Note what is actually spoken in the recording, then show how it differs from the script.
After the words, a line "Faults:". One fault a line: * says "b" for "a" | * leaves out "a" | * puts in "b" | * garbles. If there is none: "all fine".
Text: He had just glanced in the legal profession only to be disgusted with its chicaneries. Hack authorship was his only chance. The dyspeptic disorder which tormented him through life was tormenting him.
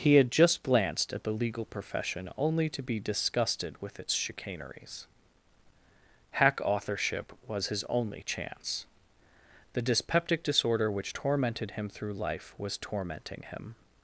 He had just glanced at the legal profession only to be disgusted with its chicaneries. Hack authorship was his only chance. The dyspeptic disorder which tormented him through life was tormenting him.
Faults:
* says "at" for "in"